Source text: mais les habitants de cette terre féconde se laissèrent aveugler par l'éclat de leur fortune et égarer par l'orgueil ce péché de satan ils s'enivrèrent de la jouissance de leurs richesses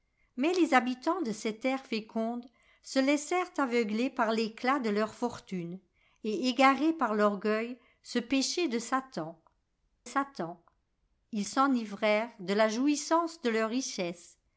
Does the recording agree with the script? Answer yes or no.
no